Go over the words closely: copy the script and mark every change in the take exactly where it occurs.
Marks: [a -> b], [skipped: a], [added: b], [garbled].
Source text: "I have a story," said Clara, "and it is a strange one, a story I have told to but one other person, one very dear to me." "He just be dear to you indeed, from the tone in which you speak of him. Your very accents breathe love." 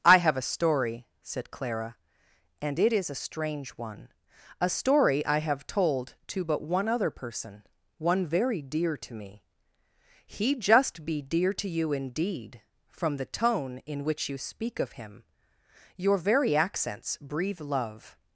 "I have a story," said Clara, "and it is a strange one, a story I have told to but one other person, one very dear to me." "He just be dear to you indeed, from the tone in which you speak of him. Your very accents breathe love."